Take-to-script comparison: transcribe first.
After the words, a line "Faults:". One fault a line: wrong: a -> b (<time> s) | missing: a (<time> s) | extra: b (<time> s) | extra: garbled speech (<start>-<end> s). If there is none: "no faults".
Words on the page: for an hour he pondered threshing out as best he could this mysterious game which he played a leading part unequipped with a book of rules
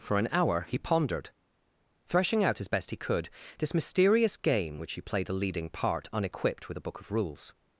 for an hour he pondered threshing out as best he could this mysterious game which he played a leading part unequipped with a book of rules
Faults:
no faults